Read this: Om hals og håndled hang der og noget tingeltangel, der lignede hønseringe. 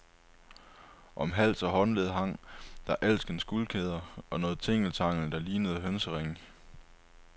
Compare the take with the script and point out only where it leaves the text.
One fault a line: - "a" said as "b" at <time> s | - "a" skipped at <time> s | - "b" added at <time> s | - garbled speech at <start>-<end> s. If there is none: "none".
- "alskens guldkæder" added at 3.0 s